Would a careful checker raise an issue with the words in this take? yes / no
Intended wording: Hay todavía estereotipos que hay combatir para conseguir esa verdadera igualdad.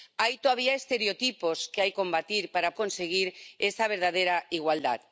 no